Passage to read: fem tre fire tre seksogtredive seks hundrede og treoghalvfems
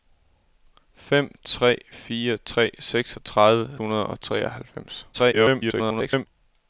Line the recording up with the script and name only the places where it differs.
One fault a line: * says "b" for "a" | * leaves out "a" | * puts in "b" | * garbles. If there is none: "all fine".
* leaves out "seks"
* garbles